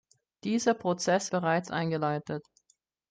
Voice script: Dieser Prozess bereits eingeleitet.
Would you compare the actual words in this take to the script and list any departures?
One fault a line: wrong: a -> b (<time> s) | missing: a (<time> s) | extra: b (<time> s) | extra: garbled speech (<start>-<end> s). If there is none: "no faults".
no faults